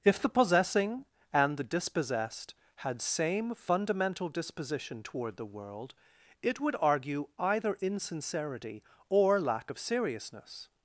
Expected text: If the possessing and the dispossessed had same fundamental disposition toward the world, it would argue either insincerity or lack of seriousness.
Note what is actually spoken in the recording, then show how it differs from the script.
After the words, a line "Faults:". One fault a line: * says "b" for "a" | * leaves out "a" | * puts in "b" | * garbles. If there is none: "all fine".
If the possessing and the dispossessed had same fundamental disposition toward the world, it would argue either insincerity or lack of seriousness.
Faults:
all fine